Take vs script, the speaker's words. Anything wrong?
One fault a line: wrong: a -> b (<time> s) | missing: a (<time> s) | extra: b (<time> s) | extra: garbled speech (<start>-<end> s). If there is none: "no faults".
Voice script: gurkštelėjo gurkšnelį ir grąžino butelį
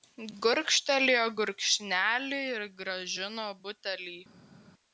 no faults